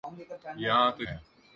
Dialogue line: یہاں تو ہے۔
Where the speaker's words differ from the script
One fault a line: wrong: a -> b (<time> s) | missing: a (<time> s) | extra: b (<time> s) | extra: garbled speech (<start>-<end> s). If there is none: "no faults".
no faults